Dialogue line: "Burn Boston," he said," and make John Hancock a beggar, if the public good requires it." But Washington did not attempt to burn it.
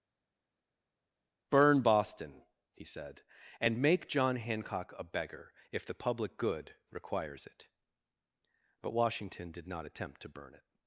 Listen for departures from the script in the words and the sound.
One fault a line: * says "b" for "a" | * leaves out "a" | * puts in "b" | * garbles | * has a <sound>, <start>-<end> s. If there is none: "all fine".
all fine